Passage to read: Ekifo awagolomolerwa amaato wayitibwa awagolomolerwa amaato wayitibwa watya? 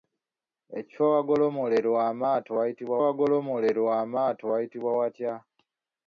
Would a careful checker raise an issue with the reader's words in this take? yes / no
no